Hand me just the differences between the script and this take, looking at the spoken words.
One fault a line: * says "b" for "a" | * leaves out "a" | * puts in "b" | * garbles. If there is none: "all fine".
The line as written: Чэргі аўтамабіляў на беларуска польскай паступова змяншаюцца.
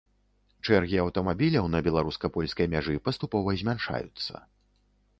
* puts in "мяжы"